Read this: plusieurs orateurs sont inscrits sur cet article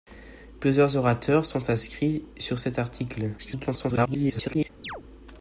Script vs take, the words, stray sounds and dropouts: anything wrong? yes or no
yes